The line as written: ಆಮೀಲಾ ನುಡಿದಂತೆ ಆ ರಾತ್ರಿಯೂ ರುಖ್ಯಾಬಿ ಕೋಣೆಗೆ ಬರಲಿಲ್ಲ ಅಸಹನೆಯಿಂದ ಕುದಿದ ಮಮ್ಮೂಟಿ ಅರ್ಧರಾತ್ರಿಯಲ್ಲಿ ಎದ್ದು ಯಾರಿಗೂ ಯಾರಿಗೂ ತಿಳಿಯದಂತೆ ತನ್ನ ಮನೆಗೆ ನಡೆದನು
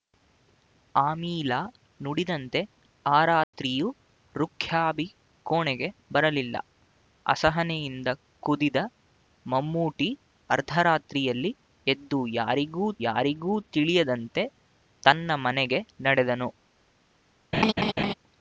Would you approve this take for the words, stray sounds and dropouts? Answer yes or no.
no